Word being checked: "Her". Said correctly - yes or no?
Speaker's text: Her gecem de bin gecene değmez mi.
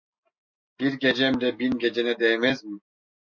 no